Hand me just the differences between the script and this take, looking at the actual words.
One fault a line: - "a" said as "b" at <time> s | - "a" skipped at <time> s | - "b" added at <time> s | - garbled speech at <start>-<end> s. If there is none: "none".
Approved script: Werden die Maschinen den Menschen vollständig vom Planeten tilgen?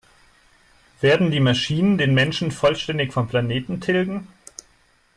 none